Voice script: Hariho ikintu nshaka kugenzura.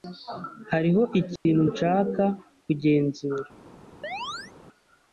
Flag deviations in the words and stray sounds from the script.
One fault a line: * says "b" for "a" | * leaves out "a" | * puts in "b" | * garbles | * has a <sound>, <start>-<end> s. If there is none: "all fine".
* has a dropout, 1.4-1.5 s
* has a chirp, 4.0-4.5 s